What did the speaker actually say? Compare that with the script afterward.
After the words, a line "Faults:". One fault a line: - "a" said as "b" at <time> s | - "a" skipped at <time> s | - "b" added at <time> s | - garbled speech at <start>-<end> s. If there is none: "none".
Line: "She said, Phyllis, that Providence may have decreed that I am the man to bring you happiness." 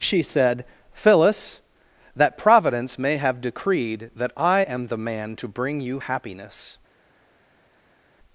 "She said, Phyllis, that Providence may have decreed that I am the man to bring you happiness."
Faults:
none